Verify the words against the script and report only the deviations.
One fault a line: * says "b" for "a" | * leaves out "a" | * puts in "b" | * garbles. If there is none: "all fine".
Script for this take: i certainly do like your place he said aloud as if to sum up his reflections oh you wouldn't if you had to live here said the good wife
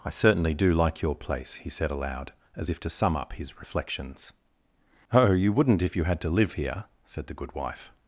all fine